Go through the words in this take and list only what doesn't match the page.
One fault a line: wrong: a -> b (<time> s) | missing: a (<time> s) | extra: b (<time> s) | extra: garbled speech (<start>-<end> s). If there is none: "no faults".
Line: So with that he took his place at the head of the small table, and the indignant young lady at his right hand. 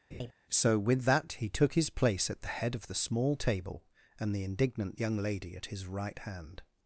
no faults